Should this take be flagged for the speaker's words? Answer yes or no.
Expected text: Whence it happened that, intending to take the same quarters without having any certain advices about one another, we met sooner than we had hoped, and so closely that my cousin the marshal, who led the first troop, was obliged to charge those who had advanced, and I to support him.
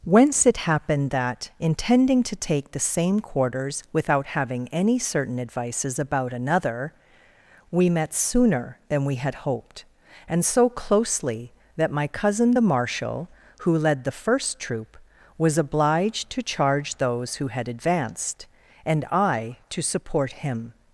yes